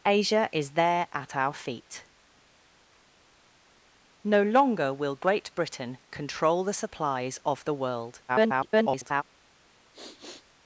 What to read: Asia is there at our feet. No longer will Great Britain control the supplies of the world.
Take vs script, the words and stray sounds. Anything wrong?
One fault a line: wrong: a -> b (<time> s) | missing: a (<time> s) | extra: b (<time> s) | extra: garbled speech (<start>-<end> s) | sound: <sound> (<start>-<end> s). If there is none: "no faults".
extra: garbled speech (8.3-9.2 s)
sound: sniff (9.9-10.5 s)